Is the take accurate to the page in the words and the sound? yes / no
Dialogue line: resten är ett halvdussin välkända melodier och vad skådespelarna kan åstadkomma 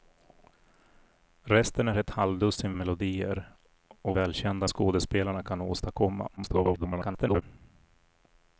no